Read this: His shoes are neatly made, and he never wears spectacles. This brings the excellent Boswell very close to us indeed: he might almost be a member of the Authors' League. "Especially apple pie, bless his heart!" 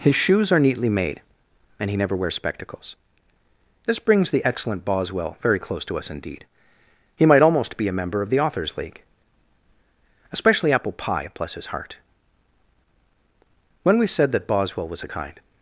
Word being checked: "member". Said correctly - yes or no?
yes